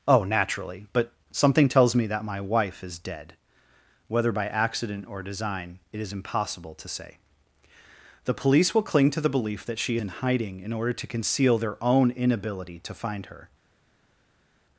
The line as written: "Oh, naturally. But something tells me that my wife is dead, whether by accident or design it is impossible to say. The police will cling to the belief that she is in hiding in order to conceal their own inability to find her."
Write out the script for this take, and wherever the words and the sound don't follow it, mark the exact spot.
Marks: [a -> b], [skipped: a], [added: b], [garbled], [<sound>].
"Oh, naturally. But something tells me that my wife is dead, whether by accident or design it is impossible to say. The police will cling to the belief that she [skipped: is] in hiding in order to conceal their own inability to find her."